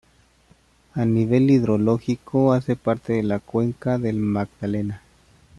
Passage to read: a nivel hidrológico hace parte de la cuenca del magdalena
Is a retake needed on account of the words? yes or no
no